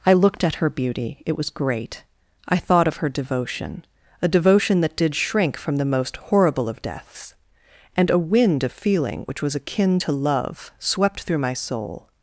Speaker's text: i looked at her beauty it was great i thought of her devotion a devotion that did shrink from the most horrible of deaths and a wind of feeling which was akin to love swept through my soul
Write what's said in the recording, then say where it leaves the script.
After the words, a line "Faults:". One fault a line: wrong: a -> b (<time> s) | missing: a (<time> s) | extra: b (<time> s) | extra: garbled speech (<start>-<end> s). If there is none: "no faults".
i looked at her beauty it was great i thought of her devotion a devotion that did shrink from the most horrible of deaths and a wind of feeling which was akin to love swept through my soul
Faults:
no faults